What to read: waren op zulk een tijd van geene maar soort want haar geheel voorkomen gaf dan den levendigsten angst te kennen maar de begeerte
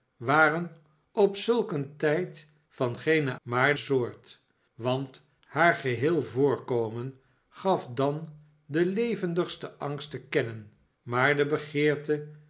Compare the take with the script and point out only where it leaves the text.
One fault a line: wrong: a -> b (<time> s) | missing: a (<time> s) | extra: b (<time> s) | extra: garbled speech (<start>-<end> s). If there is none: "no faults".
no faults